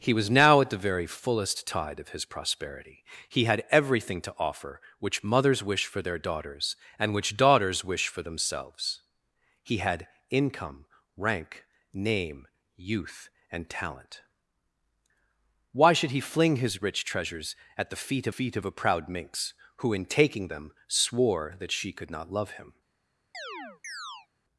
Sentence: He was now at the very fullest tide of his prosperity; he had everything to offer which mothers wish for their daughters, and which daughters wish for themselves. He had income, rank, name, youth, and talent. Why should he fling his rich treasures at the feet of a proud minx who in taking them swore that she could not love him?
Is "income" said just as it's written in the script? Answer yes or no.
yes